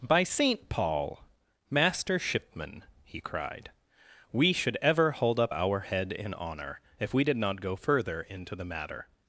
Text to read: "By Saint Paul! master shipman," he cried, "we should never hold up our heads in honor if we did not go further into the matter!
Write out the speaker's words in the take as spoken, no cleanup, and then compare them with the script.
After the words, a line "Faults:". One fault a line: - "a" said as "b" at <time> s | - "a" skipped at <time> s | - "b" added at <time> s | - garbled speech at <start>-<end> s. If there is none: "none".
"By Saint Paul! master shipman," he cried, "we should ever hold up our head in honor if we did not go further into the matter!
Faults:
- "never" said as "ever" at 4.8 s
- "heads" said as "head" at 5.8 s